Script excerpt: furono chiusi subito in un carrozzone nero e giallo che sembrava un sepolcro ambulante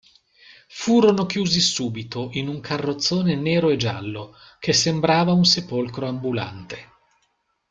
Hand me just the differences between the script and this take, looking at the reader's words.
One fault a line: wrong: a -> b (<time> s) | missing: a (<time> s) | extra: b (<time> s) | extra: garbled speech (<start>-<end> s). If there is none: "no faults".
no faults